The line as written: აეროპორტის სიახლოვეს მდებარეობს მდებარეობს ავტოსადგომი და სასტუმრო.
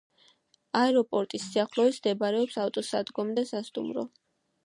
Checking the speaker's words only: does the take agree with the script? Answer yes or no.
no